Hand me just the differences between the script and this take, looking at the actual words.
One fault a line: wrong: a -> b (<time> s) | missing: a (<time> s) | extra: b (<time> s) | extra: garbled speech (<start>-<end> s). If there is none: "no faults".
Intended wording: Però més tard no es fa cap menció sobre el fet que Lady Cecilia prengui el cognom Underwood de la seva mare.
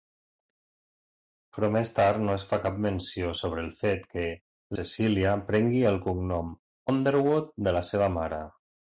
missing: Lady (4.2 s)